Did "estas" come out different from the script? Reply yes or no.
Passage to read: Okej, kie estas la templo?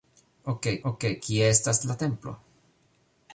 no